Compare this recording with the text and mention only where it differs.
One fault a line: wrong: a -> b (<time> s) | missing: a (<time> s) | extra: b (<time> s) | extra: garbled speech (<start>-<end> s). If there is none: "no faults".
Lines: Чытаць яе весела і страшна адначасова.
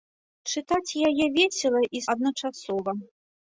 missing: страшна (2.0 s)